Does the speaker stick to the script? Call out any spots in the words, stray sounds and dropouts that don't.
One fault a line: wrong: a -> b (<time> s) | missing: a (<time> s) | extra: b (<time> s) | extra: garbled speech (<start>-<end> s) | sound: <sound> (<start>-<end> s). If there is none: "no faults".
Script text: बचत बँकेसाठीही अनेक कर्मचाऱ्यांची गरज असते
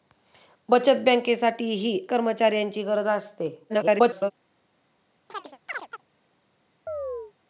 missing: अनेक (2.0 s)
extra: garbled speech (3.7-4.3 s)
sound: chirp (5.3-6.0 s)
sound: chirp (6.9-7.3 s)